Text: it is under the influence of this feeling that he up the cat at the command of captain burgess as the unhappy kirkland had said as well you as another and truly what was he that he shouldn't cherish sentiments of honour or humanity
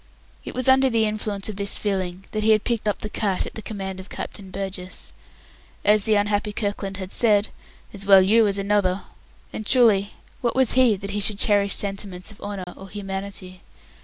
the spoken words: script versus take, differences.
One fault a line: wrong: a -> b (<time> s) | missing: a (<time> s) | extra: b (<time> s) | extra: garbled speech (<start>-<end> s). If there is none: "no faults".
wrong: is -> was (0.6 s)
extra: had picked (2.5 s)
wrong: shouldn't -> should (11.2 s)